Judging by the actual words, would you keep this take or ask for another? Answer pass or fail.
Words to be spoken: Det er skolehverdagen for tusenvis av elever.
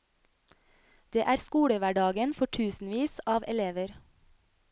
pass